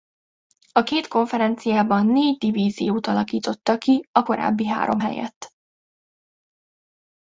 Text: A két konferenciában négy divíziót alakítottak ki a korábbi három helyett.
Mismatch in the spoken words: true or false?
false